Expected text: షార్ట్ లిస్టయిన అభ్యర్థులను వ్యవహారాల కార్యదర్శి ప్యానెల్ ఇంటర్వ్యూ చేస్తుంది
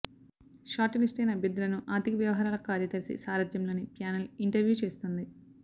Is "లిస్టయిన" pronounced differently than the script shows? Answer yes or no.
no